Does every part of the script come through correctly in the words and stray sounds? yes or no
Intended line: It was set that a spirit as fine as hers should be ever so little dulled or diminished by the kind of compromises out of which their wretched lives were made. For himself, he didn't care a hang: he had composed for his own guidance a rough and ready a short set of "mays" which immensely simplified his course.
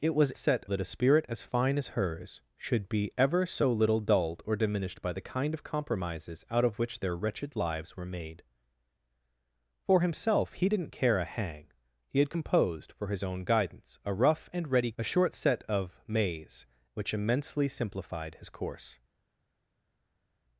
yes